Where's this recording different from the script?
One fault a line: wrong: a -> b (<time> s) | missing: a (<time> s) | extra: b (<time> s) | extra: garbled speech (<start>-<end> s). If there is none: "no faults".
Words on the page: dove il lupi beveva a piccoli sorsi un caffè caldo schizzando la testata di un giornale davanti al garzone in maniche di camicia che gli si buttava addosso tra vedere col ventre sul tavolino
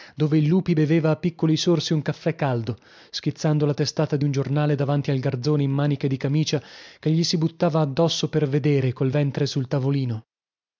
wrong: tra -> per (8.3 s)